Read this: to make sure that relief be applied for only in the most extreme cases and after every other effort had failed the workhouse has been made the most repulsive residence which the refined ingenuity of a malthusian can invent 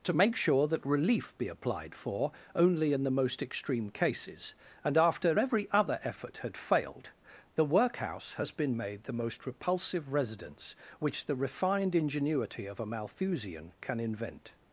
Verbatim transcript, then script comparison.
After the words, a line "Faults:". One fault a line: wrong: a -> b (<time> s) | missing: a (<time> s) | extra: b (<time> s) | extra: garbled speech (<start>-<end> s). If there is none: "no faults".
to make sure that relief be applied for only in the most extreme cases and after every other effort had failed the workhouse has been made the most repulsive residence which the refined ingenuity of a malthusian can invent
Faults:
no faults